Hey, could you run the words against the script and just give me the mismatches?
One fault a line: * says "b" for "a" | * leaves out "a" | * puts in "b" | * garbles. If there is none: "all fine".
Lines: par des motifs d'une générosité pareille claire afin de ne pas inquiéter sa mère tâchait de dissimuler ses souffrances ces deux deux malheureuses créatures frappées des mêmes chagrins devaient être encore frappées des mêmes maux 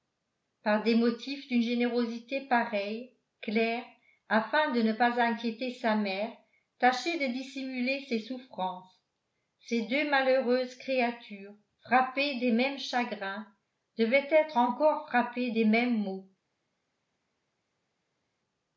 * leaves out "deux"